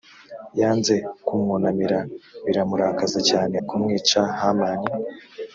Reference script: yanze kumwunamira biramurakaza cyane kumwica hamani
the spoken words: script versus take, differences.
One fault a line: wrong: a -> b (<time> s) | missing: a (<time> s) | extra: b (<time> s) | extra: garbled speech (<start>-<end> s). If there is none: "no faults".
no faults